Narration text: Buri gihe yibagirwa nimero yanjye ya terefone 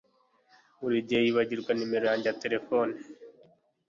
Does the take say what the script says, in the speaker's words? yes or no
yes